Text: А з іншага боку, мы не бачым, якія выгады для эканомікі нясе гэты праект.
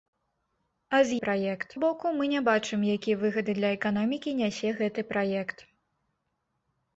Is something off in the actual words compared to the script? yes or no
yes